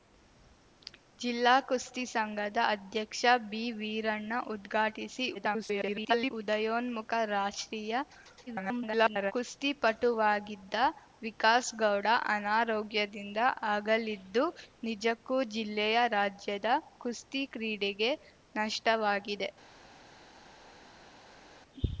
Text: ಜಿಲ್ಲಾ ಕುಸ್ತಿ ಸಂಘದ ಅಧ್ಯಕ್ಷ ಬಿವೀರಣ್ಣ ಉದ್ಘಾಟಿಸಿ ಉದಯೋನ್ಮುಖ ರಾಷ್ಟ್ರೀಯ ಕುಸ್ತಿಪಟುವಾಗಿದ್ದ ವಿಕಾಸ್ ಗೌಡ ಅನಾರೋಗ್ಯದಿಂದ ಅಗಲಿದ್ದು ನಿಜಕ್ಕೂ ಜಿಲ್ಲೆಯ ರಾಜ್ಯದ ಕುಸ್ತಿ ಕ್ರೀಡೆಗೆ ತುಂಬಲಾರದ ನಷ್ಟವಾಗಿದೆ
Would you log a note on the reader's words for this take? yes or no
yes